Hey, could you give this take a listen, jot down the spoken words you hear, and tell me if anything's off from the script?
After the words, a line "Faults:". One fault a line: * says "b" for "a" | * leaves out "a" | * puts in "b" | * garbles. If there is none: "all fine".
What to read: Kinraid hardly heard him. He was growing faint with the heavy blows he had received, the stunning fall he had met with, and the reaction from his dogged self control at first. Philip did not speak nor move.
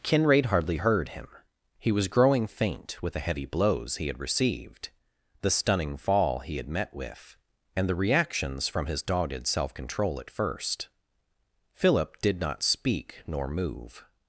Kinraid hardly heard him. He was growing faint with the heavy blows he had received, the stunning fall he had met with, and the reactions from his dogged self control at first. Philip did not speak nor move.
Faults:
* says "reactions" for "reaction"